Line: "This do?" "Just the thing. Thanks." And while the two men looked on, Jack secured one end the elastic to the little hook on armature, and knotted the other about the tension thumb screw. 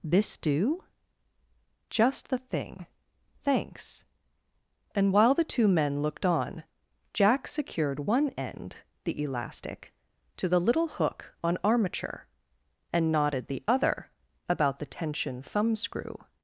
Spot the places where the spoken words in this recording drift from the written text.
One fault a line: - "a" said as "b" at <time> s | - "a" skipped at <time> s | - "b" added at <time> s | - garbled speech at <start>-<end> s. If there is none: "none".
none